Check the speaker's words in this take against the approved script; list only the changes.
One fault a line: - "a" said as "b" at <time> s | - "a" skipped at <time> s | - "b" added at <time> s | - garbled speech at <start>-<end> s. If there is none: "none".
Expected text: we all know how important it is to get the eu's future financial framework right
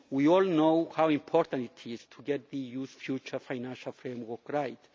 none